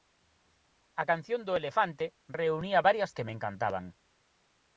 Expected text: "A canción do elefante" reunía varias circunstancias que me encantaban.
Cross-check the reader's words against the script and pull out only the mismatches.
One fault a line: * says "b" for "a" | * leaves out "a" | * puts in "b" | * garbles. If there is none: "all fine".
* leaves out "circunstancias"